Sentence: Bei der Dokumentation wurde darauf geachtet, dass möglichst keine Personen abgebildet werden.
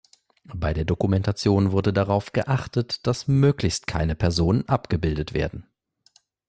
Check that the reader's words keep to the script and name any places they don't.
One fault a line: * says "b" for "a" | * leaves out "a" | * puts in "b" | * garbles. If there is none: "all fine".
all fine